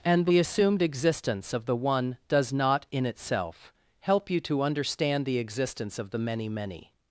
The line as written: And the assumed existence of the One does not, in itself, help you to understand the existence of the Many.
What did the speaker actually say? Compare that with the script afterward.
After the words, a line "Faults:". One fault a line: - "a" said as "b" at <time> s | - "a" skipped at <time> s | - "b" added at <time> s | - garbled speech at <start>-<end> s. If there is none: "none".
And the assumed existence of the One does not, in itself, help you to understand the existence of the Many Many.
Faults:
- "Many" added at 6.5 s